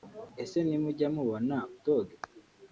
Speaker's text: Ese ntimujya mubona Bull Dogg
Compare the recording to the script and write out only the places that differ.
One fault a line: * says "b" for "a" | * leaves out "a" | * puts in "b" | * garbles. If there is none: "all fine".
* leaves out "Bull"